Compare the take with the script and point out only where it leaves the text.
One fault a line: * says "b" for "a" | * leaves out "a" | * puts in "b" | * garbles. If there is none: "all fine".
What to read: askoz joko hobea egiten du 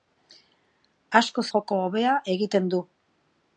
all fine